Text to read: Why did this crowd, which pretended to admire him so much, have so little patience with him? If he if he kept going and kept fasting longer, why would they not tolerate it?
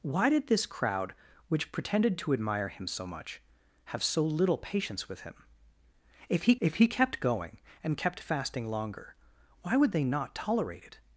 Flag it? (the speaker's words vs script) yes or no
no